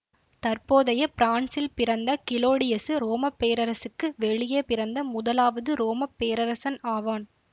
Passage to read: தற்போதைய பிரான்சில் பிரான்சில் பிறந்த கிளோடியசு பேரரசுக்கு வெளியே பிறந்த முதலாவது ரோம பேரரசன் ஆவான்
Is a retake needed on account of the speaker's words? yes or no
yes